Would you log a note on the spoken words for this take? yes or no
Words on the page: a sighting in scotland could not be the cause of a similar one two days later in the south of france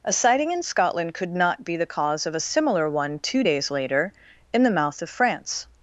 yes